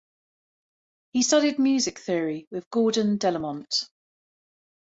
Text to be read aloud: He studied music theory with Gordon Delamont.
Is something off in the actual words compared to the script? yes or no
no